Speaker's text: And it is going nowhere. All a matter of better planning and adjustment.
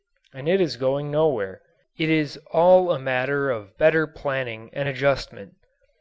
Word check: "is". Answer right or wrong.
right